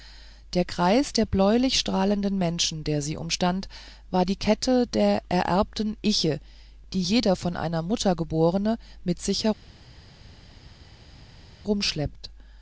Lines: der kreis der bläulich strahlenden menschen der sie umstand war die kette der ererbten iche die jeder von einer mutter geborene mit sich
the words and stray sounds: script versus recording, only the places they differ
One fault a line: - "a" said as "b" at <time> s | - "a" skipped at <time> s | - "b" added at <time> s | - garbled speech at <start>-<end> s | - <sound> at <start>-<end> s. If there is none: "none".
none